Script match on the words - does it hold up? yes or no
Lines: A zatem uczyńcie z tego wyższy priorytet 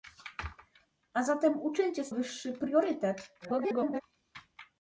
no